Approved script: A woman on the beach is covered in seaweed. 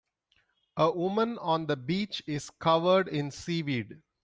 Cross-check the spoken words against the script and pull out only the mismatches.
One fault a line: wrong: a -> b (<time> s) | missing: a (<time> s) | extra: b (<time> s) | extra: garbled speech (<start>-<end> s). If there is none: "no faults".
no faults